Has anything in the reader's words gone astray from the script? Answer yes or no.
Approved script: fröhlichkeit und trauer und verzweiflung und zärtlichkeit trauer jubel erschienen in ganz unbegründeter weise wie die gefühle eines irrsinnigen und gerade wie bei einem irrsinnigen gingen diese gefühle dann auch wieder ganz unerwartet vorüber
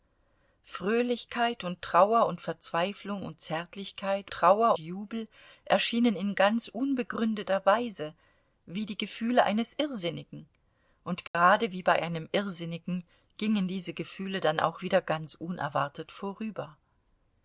no